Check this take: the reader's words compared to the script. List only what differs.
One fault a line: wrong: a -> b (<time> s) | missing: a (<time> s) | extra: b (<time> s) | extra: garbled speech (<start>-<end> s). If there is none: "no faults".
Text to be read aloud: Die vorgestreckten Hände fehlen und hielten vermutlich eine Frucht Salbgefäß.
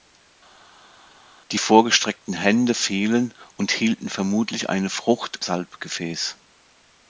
no faults